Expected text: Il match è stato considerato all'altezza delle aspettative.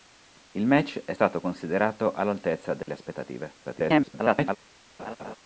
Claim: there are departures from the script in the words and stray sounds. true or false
true